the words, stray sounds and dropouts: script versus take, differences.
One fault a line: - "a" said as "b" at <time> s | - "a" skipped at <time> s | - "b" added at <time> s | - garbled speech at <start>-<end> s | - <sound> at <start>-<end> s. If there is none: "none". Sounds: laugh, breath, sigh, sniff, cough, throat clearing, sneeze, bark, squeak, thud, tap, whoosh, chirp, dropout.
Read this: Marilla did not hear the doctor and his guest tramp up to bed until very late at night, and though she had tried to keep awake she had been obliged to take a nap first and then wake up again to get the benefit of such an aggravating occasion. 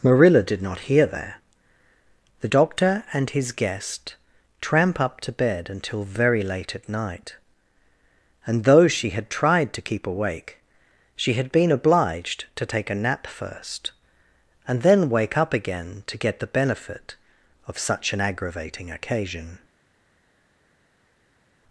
- "there" added at 1.1 s